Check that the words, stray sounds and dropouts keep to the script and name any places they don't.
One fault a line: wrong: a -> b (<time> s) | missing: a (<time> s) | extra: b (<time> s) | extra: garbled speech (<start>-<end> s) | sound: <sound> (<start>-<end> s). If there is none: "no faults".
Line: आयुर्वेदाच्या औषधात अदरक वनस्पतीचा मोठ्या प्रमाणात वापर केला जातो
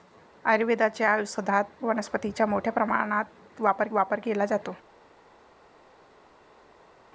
missing: अदरक (1.9 s)
extra: वापर (3.9 s)